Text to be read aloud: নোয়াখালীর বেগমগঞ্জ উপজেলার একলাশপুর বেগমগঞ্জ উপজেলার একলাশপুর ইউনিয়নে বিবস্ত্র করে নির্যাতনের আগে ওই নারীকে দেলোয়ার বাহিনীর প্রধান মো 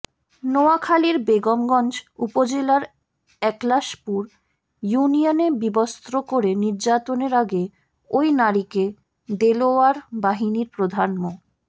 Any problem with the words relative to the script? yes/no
yes